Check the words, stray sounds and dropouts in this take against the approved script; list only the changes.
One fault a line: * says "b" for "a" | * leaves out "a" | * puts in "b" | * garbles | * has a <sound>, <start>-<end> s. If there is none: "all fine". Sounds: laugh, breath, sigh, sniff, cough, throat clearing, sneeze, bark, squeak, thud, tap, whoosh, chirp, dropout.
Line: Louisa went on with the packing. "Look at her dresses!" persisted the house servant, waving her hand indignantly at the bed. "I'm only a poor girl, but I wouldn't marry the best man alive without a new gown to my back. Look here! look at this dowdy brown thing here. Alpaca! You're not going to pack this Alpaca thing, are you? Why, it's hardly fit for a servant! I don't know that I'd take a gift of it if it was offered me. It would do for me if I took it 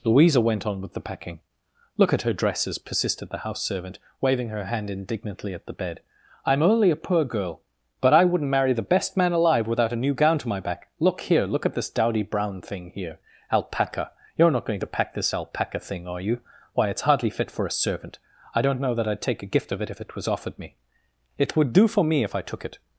all fine